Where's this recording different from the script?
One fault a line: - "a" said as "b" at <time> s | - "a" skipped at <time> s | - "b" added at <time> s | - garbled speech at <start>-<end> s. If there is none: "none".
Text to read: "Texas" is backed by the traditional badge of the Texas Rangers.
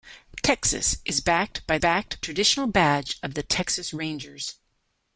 - "the" said as "backed" at 1.8 s